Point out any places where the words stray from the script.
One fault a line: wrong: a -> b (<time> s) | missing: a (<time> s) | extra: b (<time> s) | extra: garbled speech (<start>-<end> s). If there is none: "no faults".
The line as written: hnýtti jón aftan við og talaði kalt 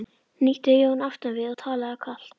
no faults